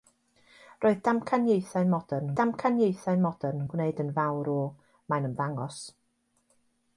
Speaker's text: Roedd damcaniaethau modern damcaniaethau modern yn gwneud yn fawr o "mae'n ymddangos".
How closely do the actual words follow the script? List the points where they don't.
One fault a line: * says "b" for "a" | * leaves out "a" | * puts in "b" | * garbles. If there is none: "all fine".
all fine